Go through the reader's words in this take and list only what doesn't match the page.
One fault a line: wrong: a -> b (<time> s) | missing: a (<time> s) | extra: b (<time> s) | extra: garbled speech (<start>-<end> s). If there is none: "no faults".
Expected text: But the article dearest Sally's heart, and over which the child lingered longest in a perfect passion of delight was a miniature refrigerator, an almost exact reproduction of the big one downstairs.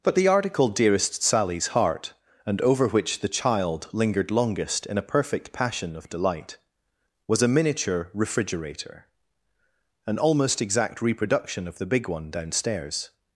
no faults